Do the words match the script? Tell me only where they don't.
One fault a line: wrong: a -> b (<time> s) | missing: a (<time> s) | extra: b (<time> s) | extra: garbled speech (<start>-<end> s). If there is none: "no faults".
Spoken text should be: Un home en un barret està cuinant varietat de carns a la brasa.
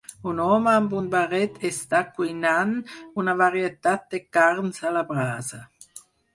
wrong: en -> amb (0.8 s)
extra: una (3.2 s)